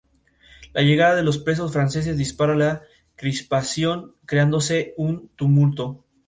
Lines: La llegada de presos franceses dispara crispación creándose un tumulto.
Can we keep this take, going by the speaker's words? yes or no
no